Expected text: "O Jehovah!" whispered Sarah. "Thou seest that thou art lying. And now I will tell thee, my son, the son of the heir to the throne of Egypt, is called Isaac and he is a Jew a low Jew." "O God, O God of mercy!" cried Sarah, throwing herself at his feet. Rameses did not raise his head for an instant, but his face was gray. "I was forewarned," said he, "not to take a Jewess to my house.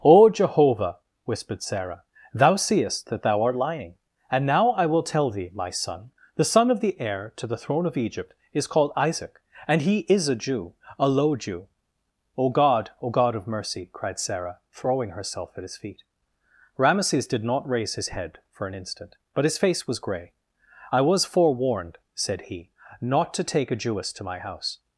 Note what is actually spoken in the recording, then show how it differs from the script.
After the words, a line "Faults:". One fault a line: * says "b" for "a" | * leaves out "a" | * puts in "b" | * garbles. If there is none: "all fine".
"O Jehovah!" whispered Sarah. "Thou seest that thou art lying. And now I will tell thee, my son, the son of the heir to the throne of Egypt, is called Isaac and he is a Jew a low Jew." "O God, O God of mercy!" cried Sarah, throwing herself at his feet. Rameses did not raise his head for an instant, but his face was gray. "I was forewarned," said he, "not to take a Jewess to my house.
Faults:
all fine